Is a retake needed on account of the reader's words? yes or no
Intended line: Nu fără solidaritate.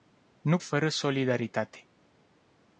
no